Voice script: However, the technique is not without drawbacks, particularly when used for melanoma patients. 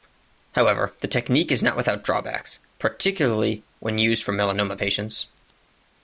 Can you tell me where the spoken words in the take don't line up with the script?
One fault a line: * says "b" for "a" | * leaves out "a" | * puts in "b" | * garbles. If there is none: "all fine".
all fine